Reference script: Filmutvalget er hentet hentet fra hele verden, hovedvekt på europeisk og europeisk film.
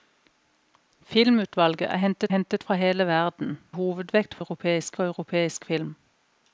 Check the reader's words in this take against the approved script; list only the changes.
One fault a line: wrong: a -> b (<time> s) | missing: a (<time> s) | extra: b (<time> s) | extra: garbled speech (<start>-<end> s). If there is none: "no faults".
no faults